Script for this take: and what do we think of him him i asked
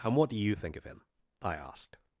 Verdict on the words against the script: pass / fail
fail